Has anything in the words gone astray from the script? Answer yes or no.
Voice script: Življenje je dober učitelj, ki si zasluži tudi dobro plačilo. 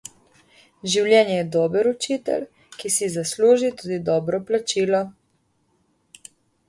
no